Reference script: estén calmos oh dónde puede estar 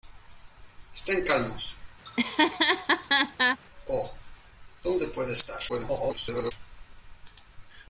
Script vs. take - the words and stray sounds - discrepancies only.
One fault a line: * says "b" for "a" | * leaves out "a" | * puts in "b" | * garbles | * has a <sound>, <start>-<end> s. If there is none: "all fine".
* has a laugh, 2.0-3.6 s
* garbles